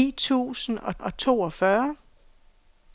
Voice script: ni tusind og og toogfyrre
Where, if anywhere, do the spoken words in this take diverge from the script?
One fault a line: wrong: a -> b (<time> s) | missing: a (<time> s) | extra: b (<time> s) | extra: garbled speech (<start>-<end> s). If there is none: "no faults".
no faults